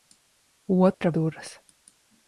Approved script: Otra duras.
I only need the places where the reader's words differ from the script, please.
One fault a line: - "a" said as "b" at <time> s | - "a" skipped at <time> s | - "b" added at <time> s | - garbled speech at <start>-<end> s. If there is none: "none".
none